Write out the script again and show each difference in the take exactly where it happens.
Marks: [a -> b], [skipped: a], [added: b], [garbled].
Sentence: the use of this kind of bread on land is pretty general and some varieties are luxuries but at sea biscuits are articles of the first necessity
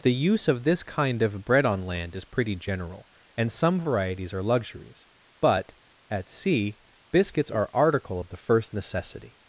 the use of this kind of bread on land is pretty general and some varieties are luxuries but at sea biscuits are [articles -> article] of the first necessity